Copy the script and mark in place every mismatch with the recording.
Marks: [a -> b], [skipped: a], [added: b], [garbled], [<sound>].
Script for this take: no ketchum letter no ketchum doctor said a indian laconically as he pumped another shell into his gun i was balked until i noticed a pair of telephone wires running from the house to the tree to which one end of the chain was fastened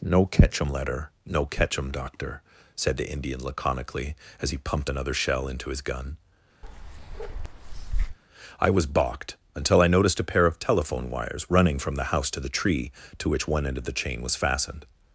no ketchum letter no ketchum doctor said [a -> the] indian laconically as he pumped another shell into his gun [bark] i was balked until i noticed a pair of telephone wires running from the house to the tree to which one end of the chain was fastened